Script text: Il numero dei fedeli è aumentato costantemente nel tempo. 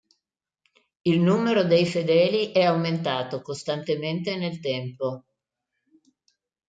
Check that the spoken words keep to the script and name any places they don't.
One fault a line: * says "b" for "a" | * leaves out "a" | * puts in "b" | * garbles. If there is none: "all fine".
all fine